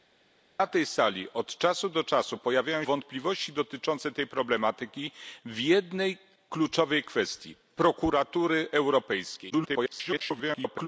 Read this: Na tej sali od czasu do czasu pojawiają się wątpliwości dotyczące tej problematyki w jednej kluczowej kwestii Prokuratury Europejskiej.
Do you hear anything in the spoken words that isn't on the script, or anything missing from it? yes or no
yes